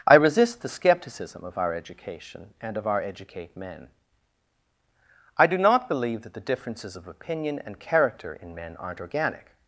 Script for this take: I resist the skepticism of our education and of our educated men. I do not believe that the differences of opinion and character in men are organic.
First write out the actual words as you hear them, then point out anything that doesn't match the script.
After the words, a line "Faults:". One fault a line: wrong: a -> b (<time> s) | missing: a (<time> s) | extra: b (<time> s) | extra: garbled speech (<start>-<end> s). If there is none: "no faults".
I resist the skepticism of our education and of our educate men. I do not believe that the differences of opinion and character in men aren't organic.
Faults:
wrong: educated -> educate (3.0 s)
wrong: are -> aren't (8.8 s)